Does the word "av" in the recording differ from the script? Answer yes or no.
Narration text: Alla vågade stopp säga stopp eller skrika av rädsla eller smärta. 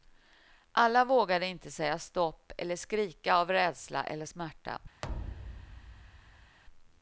no